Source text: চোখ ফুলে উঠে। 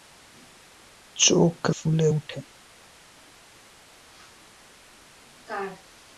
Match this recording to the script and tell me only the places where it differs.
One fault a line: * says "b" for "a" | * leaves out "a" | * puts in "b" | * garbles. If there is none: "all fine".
all fine